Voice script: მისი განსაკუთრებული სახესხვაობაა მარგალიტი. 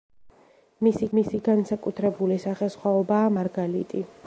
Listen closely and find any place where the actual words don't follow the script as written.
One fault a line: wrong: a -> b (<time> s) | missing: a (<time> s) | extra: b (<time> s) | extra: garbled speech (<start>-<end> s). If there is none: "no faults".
extra: მისი (1.2 s)